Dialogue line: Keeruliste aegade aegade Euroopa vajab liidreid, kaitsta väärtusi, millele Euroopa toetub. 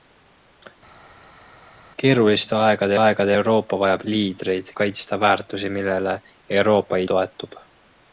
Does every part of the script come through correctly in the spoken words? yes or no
yes